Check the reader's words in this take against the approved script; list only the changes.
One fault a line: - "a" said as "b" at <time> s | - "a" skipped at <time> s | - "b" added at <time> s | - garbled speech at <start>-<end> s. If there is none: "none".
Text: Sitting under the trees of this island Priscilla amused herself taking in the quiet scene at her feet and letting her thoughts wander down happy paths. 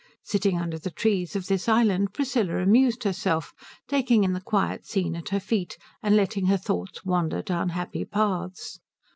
none